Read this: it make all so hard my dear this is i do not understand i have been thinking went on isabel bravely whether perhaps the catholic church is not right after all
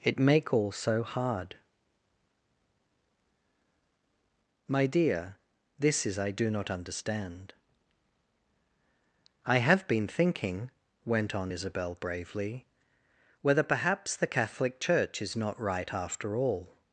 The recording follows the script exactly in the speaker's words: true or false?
true